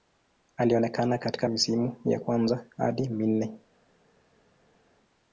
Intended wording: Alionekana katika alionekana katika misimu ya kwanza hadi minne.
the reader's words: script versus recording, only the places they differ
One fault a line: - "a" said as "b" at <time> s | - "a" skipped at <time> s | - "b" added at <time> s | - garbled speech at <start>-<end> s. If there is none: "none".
- "alionekana katika" skipped at 1.5 s